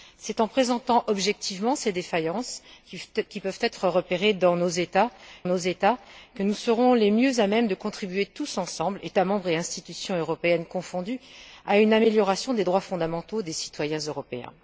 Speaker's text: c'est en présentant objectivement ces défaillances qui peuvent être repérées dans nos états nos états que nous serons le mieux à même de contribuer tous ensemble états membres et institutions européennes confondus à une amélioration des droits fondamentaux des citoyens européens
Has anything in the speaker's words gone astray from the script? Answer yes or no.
no